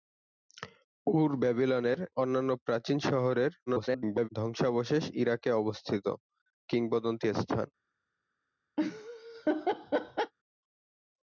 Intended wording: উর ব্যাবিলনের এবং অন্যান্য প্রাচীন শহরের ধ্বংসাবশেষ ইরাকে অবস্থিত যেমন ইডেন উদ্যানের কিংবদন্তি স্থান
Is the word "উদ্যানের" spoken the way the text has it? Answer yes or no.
no